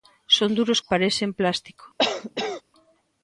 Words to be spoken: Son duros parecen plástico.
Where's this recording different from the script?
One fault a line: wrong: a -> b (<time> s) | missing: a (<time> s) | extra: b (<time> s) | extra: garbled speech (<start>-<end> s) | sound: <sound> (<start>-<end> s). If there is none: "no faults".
sound: cough (2.0-2.6 s)